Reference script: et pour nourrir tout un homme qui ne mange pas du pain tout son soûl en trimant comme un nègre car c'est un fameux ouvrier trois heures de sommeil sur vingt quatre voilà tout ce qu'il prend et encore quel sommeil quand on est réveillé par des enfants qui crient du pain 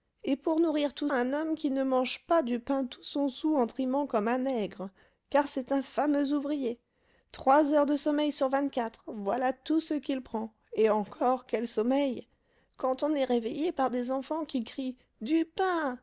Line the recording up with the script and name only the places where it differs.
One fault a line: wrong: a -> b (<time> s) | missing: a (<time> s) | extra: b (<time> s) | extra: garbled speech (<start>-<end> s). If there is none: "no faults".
no faults